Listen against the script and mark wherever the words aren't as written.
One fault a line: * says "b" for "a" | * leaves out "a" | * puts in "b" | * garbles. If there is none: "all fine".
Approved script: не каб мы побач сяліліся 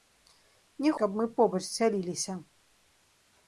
all fine